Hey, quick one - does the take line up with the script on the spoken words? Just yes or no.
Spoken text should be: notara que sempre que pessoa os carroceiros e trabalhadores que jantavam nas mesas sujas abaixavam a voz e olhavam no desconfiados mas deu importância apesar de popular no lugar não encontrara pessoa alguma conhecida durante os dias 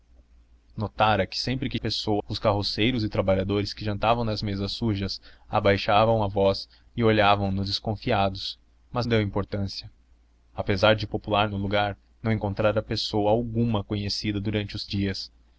yes